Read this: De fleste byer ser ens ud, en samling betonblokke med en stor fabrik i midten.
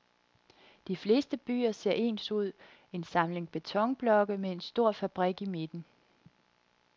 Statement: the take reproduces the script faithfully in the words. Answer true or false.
true